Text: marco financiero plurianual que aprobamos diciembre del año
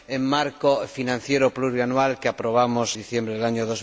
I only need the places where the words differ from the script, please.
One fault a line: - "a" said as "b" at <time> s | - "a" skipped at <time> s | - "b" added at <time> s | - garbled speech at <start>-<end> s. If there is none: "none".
none